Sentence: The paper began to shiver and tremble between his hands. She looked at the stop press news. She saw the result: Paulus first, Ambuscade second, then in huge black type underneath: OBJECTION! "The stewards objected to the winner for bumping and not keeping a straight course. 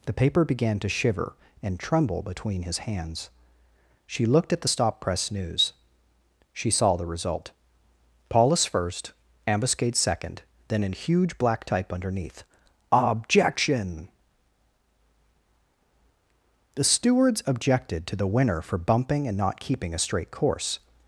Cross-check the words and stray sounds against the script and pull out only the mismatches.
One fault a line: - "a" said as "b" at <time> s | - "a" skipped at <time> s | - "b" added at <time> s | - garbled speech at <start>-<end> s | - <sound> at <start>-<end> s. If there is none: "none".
none